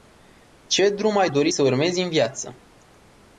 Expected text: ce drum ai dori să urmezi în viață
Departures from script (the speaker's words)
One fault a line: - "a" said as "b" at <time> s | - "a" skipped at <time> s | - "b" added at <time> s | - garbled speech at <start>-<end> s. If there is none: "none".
none